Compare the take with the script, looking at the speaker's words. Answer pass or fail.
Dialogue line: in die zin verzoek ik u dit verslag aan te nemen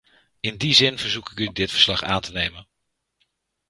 pass